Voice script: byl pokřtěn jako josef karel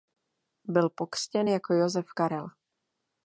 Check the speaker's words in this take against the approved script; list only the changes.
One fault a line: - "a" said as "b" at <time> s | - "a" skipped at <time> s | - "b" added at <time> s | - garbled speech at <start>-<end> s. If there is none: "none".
none